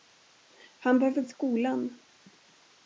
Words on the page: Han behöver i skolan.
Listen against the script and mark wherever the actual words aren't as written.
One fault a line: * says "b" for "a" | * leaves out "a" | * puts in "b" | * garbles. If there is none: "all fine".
all fine